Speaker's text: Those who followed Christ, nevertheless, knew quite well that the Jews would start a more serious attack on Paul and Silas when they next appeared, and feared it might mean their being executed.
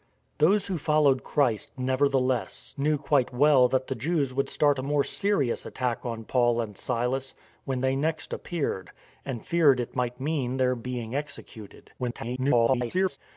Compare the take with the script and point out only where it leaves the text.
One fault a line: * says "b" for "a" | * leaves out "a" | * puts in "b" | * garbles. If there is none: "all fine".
* garbles